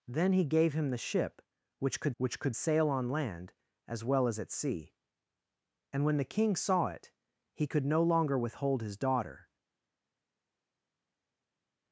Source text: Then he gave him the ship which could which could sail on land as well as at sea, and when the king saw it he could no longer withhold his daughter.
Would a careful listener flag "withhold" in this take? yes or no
no